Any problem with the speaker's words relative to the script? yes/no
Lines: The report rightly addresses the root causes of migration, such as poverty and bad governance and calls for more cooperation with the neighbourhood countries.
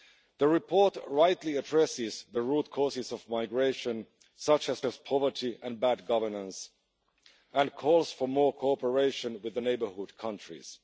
yes